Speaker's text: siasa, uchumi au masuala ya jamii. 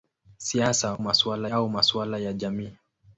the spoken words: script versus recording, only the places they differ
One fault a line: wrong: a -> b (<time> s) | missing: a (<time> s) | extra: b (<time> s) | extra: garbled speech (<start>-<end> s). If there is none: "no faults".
wrong: uchumi -> masuala (1.0 s)